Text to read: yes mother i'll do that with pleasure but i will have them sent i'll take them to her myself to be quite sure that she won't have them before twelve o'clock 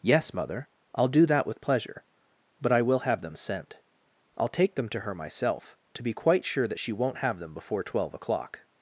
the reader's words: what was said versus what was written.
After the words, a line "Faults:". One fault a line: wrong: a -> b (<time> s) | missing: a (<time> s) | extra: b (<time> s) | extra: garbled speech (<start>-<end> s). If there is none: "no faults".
yes mother i'll do that with pleasure but i will have them sent i'll take them to her myself to be quite sure that she won't have them before twelve o'clock
Faults:
no faults